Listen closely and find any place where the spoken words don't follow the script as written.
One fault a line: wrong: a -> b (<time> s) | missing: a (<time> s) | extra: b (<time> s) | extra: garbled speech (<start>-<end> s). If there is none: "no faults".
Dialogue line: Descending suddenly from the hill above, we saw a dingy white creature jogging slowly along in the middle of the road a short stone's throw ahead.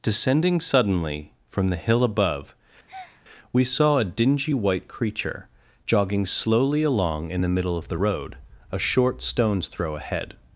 no faults